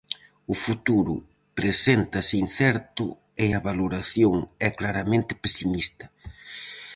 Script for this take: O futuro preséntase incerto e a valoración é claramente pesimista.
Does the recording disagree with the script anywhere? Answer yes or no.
no